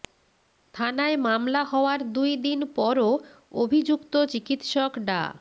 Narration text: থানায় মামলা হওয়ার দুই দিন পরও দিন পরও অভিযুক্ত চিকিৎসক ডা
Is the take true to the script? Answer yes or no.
no